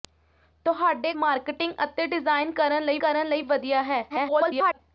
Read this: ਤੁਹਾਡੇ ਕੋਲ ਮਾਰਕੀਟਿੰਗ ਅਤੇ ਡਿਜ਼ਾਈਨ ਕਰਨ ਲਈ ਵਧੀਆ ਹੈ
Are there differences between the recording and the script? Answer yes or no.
yes